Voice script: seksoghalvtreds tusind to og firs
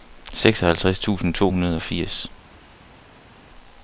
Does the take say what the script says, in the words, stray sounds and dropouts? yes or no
no